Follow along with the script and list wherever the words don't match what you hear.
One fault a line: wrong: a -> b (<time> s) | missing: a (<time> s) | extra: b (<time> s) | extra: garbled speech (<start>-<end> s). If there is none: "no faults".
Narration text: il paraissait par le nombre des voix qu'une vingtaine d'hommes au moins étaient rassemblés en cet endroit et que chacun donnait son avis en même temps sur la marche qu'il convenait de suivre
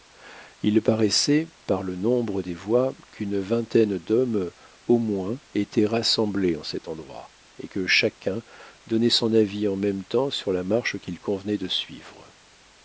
no faults